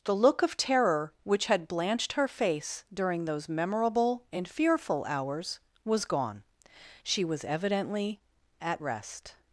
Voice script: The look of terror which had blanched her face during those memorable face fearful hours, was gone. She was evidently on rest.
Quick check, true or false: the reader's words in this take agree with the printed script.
false